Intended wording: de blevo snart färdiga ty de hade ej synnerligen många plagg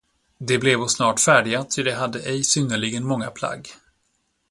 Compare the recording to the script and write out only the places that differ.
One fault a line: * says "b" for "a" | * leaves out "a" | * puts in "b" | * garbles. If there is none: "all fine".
all fine